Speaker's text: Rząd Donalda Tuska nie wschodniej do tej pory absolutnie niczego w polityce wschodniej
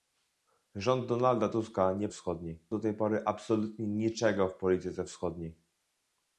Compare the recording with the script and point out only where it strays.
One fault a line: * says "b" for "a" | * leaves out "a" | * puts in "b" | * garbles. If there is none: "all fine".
all fine